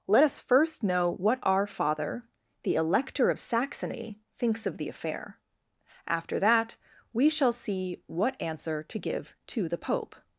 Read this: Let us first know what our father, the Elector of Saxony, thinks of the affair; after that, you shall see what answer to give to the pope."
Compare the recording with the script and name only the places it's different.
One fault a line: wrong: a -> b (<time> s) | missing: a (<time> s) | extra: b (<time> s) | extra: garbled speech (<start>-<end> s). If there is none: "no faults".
wrong: you -> we (7.1 s)